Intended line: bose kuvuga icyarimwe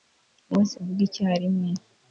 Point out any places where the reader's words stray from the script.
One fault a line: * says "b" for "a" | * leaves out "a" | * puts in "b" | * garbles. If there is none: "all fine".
all fine